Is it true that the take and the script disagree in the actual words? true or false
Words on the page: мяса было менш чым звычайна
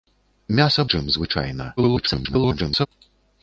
true